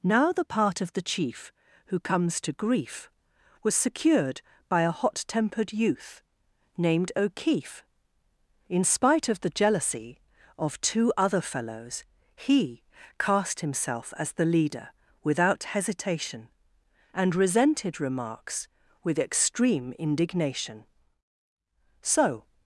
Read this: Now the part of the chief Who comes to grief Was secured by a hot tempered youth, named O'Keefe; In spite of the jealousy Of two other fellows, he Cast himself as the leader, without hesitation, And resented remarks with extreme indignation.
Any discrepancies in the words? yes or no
yes